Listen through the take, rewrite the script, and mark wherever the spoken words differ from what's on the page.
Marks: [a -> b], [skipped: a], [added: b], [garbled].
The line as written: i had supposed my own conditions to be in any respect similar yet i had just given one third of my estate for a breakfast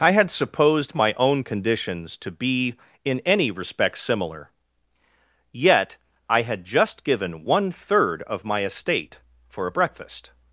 i had supposed my own conditions to be in any respect similar yet i had just given one third of my estate for a breakfast